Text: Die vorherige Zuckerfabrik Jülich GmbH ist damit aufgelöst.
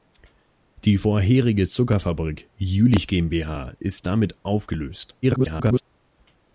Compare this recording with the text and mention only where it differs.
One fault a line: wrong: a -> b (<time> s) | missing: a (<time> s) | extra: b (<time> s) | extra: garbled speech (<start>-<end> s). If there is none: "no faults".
extra: garbled speech (5.2-5.8 s)